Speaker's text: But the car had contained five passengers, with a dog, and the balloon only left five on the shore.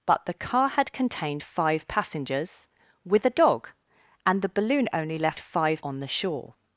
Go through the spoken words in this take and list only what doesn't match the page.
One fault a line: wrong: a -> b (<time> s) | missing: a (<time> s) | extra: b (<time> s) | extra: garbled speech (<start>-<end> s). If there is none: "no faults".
no faults